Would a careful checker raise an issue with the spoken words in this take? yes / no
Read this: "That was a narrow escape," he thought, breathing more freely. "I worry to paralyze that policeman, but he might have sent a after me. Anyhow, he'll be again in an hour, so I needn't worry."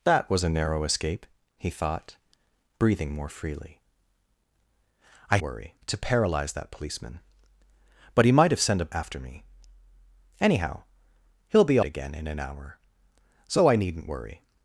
no